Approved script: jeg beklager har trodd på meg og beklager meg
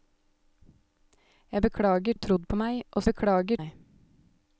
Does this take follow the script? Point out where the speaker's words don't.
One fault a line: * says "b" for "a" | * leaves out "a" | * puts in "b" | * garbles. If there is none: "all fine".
all fine